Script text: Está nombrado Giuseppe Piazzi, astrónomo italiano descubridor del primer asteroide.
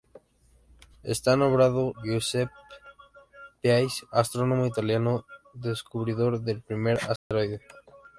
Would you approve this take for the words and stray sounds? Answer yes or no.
no